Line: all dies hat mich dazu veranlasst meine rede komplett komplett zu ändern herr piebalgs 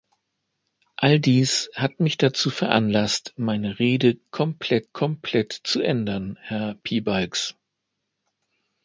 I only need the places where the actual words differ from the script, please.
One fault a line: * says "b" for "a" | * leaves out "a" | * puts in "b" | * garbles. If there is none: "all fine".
all fine